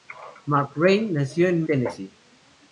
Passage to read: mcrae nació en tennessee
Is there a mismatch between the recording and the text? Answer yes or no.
no